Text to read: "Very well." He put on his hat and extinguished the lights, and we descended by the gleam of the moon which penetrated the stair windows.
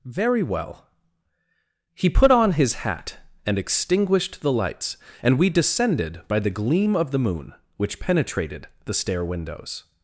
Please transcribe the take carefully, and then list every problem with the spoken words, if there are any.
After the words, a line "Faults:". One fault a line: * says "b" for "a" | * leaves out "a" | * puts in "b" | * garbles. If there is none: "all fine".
"Very well." He put on his hat and extinguished the lights, and we descended by the gleam of the moon which penetrated the stair windows.
Faults:
all fine